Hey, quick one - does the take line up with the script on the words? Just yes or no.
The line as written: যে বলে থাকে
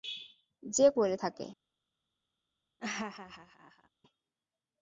yes